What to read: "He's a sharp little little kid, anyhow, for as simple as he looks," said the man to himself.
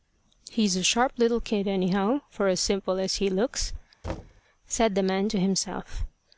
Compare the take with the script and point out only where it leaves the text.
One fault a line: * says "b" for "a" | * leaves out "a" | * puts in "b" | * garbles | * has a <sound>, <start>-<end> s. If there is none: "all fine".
* leaves out "little"
* has a thud, 4.0-4.4 s